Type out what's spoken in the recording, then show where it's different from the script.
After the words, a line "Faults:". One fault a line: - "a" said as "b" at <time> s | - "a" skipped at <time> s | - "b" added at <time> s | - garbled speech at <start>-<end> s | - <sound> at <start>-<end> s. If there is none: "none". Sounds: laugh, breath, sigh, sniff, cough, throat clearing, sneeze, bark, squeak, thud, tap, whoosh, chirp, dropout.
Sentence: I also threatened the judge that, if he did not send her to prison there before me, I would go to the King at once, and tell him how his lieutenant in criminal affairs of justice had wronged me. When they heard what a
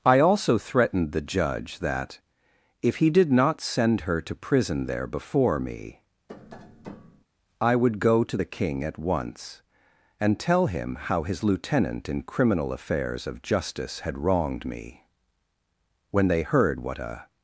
I also threatened the judge that, if he did not send her to prison there before me, I would go to the King at once, and tell him how his lieutenant in criminal affairs of justice had wronged me. When they heard what a
Faults:
- tap at 6.3-7.2 s